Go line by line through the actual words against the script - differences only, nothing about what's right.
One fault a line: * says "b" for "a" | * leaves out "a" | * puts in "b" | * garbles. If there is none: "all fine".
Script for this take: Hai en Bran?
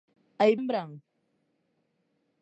all fine